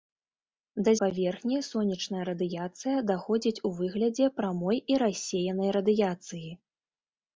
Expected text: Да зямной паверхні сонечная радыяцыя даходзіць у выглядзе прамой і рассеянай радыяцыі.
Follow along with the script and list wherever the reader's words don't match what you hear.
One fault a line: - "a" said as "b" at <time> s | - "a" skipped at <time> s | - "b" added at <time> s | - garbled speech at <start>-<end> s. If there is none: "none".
- "зямной" skipped at 0.9 s